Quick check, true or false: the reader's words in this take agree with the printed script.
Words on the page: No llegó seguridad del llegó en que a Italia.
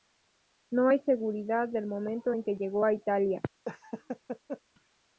false